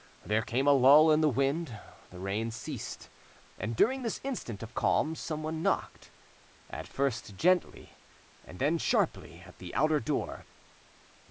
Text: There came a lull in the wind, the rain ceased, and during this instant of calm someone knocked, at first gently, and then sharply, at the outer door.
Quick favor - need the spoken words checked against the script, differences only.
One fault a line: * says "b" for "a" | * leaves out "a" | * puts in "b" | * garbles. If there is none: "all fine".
all fine